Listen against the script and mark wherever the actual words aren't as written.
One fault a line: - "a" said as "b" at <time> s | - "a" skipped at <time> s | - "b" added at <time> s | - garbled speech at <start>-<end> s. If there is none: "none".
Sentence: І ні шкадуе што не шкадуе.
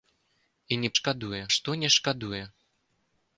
none